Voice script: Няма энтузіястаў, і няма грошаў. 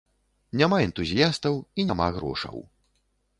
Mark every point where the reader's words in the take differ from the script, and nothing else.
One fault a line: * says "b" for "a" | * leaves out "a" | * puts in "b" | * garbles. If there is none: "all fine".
all fine